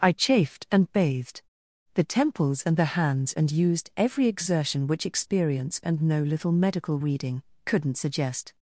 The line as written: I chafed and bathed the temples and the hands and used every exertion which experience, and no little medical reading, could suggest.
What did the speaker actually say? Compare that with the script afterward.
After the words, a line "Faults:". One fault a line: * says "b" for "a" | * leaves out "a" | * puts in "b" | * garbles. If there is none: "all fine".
I chafed and bathed the temples and the hands and used every exertion which experience, and no little medical reading, couldn't suggest.
Faults:
* says "couldn't" for "could"